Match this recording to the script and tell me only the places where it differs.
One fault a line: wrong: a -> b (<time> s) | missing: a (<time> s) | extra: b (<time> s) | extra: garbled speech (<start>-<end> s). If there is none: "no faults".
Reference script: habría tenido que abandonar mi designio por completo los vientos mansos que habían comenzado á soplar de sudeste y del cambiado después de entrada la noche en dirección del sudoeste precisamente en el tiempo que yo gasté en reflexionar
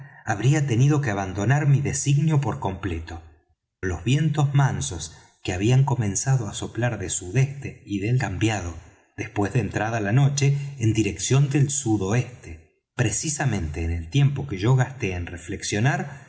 no faults